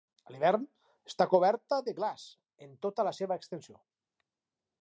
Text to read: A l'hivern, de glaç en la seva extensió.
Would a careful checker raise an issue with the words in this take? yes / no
yes